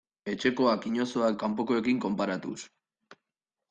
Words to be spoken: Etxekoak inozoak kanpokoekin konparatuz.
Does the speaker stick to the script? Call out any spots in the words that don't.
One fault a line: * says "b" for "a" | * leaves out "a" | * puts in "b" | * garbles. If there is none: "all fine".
all fine